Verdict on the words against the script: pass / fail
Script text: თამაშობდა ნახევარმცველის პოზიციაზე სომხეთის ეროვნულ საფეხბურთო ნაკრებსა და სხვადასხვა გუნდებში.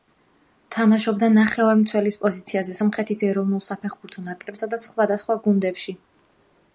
pass